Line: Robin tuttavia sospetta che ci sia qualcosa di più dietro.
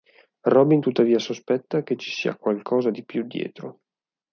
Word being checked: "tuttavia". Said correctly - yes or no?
yes